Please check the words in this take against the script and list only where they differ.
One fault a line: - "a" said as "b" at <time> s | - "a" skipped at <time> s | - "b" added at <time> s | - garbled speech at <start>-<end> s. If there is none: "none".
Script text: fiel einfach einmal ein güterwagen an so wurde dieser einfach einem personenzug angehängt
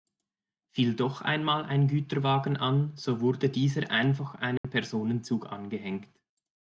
- "einfach" said as "doch" at 0.9 s